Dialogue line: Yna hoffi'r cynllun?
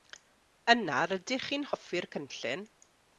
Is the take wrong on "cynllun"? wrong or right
right